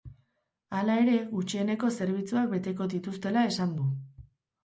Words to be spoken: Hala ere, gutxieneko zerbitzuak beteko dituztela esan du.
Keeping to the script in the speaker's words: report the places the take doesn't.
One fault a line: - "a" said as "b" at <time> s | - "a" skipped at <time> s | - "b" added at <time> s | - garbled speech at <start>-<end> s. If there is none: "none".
none